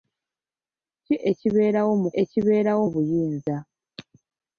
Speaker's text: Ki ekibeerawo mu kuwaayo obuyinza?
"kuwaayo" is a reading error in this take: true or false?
true